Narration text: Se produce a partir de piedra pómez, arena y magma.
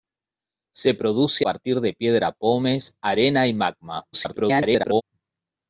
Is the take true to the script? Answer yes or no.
no